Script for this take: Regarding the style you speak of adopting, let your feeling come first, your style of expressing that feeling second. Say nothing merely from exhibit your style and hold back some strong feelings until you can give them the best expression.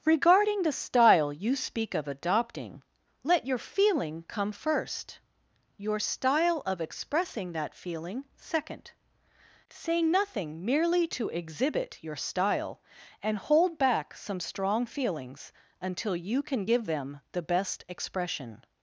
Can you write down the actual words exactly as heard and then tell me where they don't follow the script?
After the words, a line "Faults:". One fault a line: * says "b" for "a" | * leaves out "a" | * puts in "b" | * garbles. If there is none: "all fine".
Regarding the style you speak of adopting, let your feeling come first, your style of expressing that feeling second. Say nothing merely to exhibit your style and hold back some strong feelings until you can give them the best expression.
Faults:
* says "to" for "from"